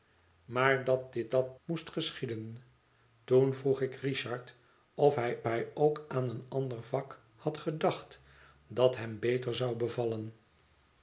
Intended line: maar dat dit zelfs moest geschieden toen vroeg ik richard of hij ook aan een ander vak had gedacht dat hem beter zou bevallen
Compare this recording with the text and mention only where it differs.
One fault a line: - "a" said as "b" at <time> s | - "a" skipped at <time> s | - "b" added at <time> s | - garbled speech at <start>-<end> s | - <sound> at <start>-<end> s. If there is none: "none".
- "zelfs" said as "dat" at 1.3 s
- "hij" added at 5.4 s